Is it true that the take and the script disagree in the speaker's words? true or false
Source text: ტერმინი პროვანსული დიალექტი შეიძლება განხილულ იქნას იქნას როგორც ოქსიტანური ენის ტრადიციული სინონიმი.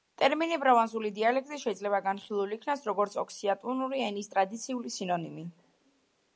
true